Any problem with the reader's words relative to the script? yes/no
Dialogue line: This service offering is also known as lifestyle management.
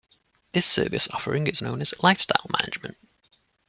yes